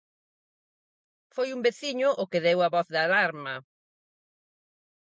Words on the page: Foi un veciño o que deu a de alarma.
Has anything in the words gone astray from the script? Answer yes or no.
yes